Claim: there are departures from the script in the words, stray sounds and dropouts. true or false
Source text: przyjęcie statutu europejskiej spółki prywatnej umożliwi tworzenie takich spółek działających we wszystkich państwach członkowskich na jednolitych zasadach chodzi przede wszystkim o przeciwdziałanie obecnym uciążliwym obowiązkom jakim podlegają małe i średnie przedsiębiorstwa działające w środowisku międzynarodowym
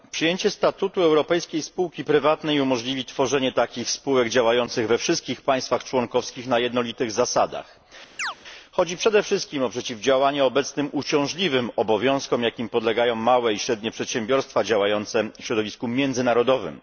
true